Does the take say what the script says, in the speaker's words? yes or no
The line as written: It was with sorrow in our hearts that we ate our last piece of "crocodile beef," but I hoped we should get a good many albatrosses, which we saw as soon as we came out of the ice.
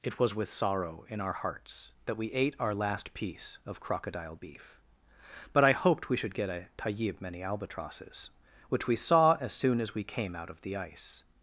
no